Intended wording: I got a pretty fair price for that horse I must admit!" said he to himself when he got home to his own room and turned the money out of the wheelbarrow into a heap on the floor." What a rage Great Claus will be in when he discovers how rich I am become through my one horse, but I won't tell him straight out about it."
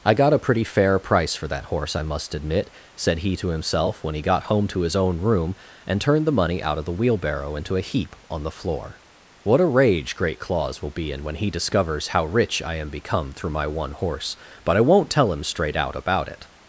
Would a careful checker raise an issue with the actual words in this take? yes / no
no